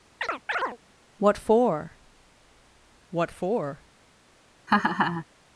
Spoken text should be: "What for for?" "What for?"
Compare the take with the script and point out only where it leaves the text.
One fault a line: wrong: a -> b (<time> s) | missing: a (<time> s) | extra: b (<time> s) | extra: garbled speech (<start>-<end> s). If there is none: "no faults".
missing: for (2.0 s)